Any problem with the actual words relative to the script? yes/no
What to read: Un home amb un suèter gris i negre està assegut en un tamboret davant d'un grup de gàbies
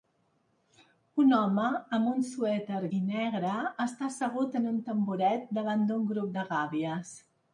yes